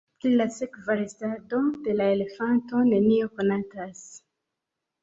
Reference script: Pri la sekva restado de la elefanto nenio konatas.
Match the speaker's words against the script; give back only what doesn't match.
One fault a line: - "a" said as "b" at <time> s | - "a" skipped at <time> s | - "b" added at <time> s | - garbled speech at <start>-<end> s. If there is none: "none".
none